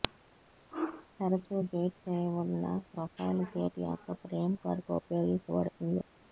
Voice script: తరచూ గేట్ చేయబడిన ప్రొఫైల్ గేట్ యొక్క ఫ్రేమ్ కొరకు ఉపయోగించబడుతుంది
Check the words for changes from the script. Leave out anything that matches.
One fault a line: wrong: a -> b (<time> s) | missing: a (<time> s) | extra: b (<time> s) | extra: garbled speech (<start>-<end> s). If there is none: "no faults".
no faults